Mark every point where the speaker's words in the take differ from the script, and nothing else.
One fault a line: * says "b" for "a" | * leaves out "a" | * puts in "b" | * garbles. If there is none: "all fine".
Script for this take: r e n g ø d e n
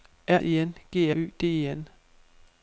all fine